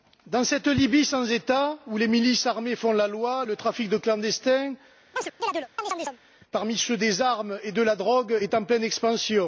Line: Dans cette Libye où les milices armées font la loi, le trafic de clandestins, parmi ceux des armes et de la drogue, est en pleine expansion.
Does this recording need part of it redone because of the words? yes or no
yes